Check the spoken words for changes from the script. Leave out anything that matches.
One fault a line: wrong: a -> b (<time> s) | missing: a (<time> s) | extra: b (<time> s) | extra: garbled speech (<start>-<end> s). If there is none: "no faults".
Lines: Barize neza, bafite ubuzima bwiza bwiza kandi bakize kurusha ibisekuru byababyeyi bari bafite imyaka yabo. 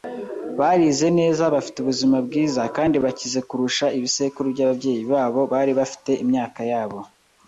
missing: bwiza (2.6 s)
extra: babo (5.1 s)